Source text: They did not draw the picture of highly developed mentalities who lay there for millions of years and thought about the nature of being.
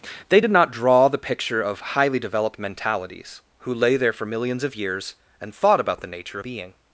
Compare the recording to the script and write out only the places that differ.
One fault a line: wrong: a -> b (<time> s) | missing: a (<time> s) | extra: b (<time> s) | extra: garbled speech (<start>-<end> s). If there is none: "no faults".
missing: of (6.4 s)